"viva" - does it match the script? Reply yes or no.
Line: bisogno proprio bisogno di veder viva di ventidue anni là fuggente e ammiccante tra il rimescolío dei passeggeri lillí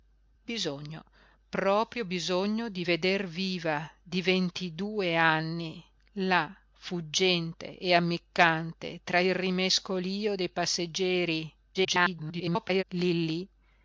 yes